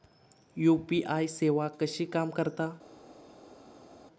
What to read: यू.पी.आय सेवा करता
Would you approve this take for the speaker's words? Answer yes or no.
no